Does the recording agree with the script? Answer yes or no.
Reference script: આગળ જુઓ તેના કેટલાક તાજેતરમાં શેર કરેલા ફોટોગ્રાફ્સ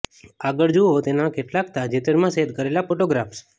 yes